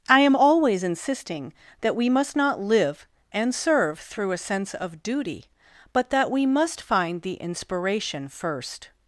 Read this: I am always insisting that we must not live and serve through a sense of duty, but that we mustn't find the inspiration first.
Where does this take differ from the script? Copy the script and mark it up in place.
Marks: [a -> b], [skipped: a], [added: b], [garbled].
I am always insisting that we must not live and serve through a sense of duty, but that we [mustn't -> must] find the inspiration first.